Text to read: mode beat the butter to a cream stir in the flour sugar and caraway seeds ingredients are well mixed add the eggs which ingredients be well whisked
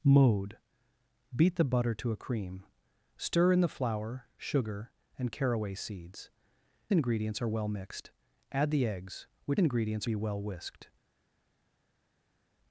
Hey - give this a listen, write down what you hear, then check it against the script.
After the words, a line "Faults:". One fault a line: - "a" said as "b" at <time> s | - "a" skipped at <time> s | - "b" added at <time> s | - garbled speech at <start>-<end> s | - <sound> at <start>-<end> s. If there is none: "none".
mode beat the butter to a cream stir in the flour sugar and caraway seeds ingredients are well mixed add the eggs which ingredients be well whisked
Faults:
none